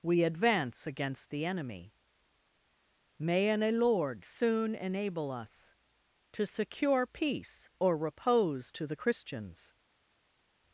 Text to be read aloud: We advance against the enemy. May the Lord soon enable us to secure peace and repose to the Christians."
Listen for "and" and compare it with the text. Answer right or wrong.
wrong